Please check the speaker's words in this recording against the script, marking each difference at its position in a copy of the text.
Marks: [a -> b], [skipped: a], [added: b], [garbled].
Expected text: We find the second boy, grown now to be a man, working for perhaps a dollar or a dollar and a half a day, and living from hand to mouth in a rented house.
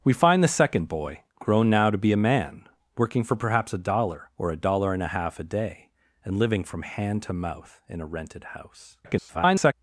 We find the second boy, grown now to be a man, working for perhaps a dollar or a dollar and a half a day, and living from hand to mouth in a rented house. [garbled]